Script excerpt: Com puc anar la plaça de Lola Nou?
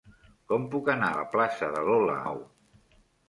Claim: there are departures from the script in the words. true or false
false